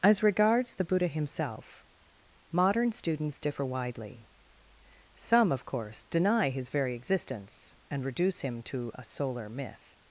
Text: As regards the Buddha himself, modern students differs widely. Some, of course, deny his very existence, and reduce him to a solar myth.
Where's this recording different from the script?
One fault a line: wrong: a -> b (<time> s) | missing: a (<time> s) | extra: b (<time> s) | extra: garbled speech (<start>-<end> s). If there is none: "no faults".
wrong: differs -> differ (3.4 s)